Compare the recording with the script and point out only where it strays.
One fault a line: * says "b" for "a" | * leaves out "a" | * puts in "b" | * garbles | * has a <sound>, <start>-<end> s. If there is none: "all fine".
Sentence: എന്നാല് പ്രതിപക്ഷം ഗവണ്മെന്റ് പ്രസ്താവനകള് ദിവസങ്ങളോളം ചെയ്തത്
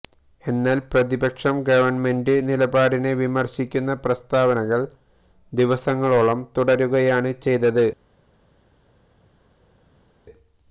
* puts in "നിലപാടിനെ വിമര്ശിക്കുന്ന"
* puts in "തുടരുകയാണ്"